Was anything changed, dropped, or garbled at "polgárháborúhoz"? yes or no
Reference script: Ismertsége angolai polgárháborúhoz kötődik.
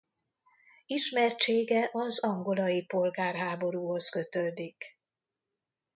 no